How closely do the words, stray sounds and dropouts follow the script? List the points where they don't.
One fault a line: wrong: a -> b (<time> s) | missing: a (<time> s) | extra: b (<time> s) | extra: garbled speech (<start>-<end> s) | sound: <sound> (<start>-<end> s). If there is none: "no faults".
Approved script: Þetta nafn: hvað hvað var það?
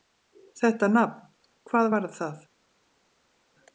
missing: hvað (1.9 s)